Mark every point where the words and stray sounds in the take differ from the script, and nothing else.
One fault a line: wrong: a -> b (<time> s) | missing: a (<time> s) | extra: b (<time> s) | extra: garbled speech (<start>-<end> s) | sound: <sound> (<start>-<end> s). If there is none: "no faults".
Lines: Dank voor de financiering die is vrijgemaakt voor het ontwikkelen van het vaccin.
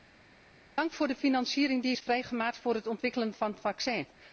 no faults